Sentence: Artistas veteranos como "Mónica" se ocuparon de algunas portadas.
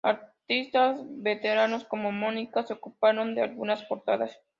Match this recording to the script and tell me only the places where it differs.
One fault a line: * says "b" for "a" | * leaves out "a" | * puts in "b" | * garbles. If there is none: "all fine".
all fine